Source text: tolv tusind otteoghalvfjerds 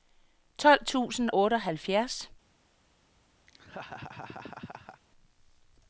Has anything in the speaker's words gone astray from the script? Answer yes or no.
no